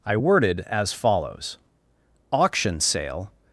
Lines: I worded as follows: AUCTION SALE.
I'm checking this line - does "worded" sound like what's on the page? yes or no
yes